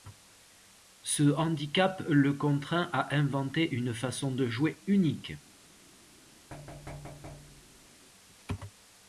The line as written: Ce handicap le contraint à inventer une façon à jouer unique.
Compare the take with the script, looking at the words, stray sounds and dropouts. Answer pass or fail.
fail